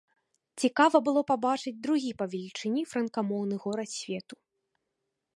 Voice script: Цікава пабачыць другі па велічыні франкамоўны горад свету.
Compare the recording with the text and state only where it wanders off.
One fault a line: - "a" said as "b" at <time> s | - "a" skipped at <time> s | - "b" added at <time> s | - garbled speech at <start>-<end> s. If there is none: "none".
- "было" added at 1.1 s